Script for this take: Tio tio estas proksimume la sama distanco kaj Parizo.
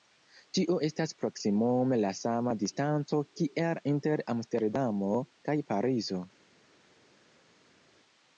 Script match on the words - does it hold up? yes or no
no